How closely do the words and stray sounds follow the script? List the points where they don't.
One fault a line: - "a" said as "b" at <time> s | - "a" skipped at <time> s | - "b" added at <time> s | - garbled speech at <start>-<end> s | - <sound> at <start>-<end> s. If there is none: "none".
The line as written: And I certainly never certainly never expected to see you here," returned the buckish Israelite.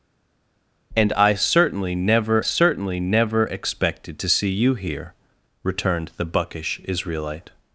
none